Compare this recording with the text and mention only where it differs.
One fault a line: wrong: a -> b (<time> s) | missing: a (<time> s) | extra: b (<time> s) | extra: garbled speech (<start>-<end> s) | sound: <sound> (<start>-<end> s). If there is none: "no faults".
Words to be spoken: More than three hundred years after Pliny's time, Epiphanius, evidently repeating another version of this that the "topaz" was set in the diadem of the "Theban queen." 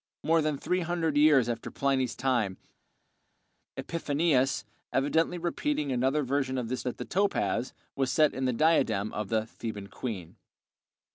no faults